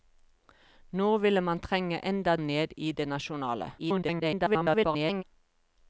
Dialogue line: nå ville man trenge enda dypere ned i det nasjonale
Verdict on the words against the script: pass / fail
fail